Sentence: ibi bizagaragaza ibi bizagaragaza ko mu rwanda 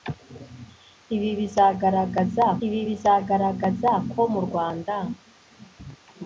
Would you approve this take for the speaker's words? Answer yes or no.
yes